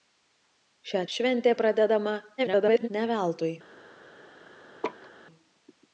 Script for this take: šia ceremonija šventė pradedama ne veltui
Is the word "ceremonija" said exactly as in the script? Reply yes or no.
no